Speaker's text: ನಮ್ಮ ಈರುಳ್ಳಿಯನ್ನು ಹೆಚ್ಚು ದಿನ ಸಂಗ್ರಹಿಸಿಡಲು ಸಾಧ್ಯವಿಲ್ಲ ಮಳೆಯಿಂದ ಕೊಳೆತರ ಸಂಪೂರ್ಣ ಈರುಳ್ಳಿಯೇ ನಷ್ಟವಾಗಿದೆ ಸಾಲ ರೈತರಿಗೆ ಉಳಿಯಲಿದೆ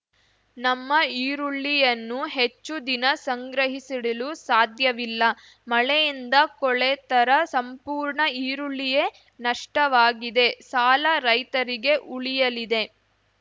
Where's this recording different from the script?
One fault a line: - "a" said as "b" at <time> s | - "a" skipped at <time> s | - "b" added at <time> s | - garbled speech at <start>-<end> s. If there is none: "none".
none